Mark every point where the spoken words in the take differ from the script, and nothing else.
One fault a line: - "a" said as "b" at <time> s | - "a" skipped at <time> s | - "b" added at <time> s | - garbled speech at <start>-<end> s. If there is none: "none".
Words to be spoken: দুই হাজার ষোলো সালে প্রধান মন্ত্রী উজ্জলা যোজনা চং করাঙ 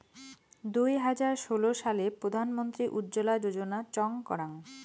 none